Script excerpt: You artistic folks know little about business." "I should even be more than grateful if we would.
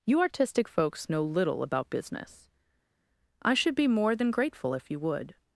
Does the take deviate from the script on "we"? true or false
true